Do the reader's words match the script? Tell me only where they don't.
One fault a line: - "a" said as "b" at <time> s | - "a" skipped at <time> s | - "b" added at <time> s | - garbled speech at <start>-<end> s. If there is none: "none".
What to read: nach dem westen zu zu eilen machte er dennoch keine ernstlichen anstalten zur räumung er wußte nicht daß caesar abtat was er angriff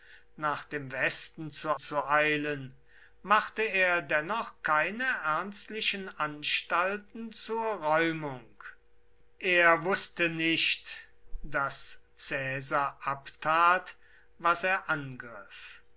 none